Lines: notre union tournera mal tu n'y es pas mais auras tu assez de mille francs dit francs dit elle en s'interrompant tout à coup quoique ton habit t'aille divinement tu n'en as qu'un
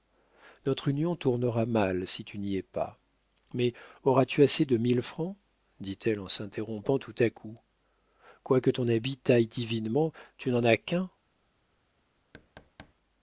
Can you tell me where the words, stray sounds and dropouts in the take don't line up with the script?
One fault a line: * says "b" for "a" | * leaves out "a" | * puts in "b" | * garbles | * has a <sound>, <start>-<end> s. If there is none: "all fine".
* puts in "si"
* leaves out "francs dit"
* has a thud, 12.3-12.9 s